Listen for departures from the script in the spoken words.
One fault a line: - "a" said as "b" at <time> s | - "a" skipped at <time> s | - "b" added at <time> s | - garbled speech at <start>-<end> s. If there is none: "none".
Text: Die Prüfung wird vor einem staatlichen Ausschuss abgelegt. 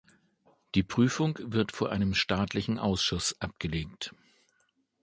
none